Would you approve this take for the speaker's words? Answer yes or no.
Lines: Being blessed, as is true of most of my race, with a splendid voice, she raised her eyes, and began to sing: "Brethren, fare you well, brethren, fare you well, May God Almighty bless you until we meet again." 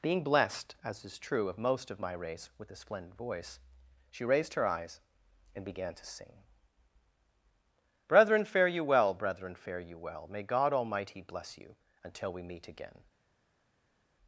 yes